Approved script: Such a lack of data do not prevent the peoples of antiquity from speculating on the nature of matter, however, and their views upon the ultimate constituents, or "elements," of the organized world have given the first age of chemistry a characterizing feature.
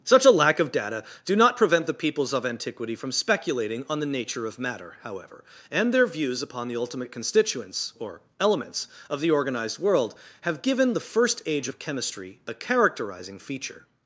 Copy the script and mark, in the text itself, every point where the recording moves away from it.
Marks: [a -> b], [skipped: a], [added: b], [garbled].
Such a lack of data do not prevent the peoples of antiquity from speculating on the nature of matter, however, and their views upon the ultimate constituents, or "elements," of the organized world have given the first age of chemistry a characterizing feature.